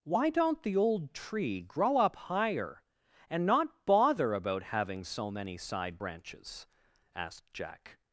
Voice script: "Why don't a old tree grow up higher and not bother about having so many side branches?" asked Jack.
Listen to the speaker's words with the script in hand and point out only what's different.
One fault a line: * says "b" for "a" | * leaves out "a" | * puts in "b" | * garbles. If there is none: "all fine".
* says "the" for "a"